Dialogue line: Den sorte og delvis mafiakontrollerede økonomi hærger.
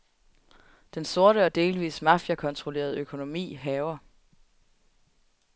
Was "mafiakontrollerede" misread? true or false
false